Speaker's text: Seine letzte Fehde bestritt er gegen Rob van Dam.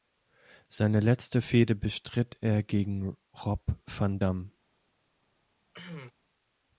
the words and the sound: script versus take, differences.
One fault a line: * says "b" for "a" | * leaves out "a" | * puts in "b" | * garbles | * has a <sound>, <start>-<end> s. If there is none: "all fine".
* has a cough, 5.7-6.1 s